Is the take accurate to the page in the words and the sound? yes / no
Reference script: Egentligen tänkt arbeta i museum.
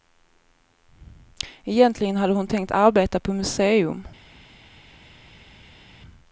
no